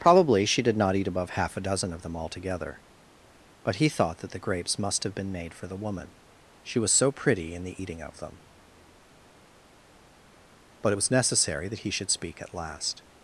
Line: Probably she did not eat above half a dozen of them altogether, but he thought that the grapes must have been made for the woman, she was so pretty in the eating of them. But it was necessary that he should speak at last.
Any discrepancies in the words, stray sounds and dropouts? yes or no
no